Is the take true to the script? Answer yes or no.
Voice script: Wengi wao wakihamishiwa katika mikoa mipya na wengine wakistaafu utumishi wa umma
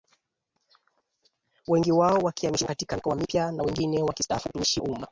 no